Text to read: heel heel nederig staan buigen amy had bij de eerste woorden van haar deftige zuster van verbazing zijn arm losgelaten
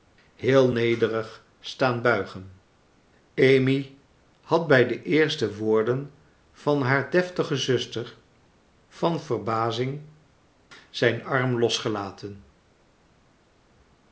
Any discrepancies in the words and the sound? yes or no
yes